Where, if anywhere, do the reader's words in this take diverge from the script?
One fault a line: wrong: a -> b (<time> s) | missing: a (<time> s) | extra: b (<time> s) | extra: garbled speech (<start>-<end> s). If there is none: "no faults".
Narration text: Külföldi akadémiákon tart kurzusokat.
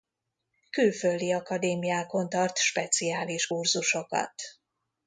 extra: speciális (2.6 s)